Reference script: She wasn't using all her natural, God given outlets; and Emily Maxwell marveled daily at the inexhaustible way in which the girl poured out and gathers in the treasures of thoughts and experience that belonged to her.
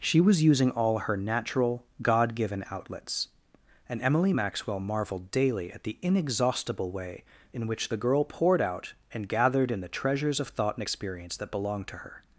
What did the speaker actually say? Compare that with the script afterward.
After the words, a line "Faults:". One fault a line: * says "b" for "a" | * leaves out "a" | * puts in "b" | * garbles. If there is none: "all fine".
She was using all her natural, God given outlets; and Emily Maxwell marveled daily at the inexhaustible way in which the girl poured out and gathered in the treasures of thought and experience that belonged to her.
Faults:
* says "was" for "wasn't"
* says "gathered" for "gathers"
* says "thought" for "thoughts"